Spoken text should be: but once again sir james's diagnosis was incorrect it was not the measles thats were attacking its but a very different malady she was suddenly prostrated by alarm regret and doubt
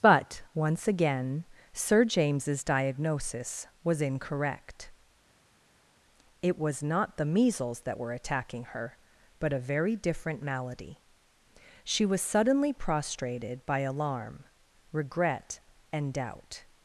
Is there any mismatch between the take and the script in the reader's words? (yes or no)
yes